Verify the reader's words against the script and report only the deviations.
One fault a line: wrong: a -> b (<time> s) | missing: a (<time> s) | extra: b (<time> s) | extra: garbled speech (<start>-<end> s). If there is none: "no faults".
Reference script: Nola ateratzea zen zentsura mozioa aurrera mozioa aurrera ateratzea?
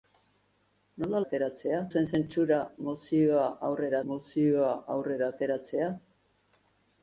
no faults